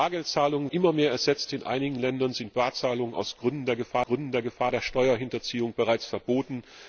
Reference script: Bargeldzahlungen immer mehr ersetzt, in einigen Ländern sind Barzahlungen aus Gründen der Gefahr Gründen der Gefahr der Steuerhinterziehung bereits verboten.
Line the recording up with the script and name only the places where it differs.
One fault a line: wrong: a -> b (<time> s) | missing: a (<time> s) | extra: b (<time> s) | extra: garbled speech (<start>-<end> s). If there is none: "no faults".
no faults